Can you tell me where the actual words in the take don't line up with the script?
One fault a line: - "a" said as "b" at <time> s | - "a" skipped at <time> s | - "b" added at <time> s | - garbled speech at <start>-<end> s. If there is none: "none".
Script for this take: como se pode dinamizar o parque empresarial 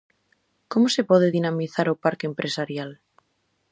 none